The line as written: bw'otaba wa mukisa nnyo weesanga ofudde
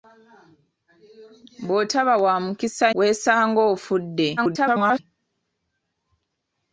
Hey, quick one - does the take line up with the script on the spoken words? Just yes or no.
no